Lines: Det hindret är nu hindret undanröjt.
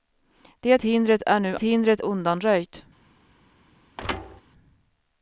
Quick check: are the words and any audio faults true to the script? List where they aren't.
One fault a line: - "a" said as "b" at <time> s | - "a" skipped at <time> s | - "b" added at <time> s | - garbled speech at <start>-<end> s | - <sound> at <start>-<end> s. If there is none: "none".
- thud at 4.0-4.4 s